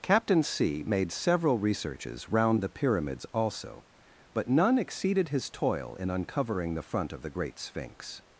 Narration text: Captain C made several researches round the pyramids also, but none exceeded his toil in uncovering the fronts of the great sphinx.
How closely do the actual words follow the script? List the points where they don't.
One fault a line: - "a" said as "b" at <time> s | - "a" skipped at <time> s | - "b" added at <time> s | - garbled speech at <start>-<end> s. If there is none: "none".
- "fronts" said as "front" at 6.8 s